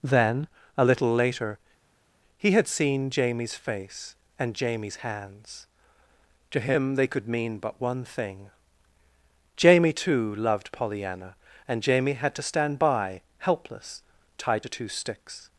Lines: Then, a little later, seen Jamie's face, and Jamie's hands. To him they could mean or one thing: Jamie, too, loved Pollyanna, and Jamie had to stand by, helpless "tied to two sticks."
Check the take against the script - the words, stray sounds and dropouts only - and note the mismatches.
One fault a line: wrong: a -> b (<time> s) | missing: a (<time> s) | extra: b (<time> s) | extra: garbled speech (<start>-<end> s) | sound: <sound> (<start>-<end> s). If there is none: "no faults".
extra: he had (2.4 s)
wrong: or -> but (7.6 s)